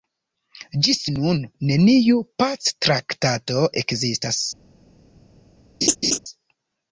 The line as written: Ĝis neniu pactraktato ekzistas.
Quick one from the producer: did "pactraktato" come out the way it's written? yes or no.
yes